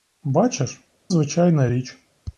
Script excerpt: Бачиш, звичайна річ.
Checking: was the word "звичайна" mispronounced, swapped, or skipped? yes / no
no